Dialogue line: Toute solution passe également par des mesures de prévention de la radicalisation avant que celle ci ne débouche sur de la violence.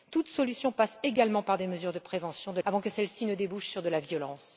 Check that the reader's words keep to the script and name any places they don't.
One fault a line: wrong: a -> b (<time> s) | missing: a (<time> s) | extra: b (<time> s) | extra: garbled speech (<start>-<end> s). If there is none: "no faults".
missing: la radicalisation (2.6 s)